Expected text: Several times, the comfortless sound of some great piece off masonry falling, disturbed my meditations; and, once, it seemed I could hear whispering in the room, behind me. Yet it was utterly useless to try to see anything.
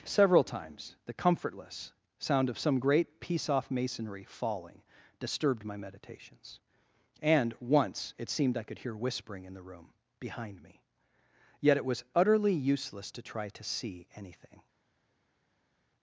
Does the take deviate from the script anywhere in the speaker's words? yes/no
no